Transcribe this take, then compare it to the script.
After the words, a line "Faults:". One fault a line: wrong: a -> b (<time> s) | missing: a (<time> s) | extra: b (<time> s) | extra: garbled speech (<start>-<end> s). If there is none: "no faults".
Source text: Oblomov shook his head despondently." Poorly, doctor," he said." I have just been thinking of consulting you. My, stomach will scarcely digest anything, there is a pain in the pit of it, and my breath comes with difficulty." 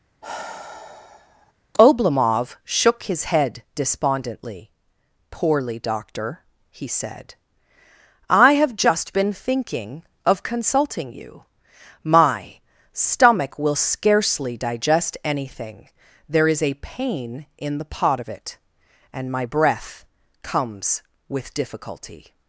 Oblomov shook his head despondently." Poorly, doctor," he said." I have just been thinking of consulting you. My, stomach will scarcely digest anything, there is a pain in the pot of it, and my breath comes with difficulty."
Faults:
wrong: pit -> pot (17.8 s)